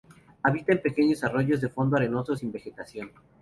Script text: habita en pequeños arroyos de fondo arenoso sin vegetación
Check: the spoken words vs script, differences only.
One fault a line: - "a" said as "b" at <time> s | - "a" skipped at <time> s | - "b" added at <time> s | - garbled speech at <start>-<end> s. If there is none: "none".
none